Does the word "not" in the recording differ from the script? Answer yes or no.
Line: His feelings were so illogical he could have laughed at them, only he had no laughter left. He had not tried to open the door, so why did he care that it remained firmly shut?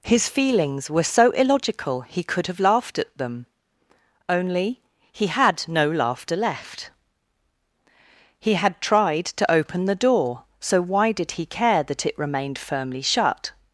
yes